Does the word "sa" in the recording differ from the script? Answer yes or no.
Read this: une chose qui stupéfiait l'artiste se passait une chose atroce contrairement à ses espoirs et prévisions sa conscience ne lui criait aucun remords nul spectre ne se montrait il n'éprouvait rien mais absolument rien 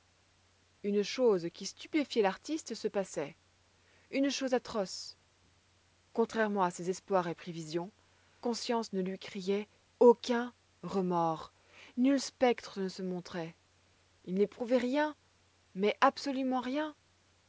yes